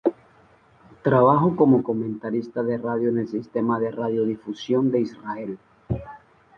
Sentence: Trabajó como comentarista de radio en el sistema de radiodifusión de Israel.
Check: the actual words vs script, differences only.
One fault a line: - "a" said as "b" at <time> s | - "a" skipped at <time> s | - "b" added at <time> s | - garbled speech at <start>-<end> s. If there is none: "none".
none